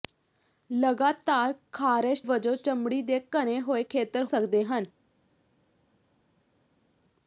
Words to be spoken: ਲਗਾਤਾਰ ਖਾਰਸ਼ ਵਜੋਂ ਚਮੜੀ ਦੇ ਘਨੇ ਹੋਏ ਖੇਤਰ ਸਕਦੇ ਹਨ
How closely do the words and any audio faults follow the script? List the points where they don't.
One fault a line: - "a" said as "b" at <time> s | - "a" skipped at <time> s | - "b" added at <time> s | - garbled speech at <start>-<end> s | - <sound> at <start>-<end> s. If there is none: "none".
none